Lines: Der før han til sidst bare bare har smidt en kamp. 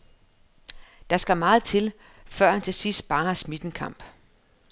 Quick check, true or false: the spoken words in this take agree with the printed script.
false